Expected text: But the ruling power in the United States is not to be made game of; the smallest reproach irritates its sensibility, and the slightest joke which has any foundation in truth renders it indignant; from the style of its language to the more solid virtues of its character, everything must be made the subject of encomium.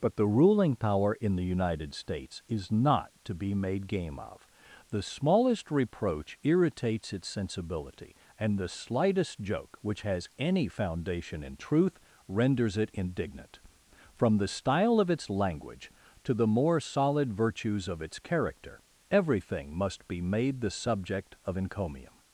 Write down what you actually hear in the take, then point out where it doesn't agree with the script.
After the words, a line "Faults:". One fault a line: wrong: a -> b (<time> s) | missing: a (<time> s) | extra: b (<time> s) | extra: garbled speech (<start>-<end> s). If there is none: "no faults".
But the ruling power in the United States is not to be made game of; the smallest reproach irritates its sensibility, and the slightest joke which has any foundation in truth renders it indignant; from the style of its language to the more solid virtues of its character, everything must be made the subject of encomium.
Faults:
no faults